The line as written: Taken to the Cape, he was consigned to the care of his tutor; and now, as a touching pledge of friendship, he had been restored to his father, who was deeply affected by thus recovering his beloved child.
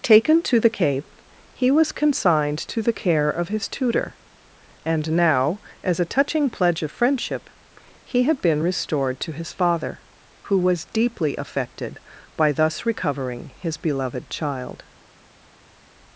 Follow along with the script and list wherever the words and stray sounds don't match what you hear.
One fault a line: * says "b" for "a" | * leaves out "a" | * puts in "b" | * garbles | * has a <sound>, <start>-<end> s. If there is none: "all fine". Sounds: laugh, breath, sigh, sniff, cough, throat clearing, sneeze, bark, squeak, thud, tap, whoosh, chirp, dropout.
all fine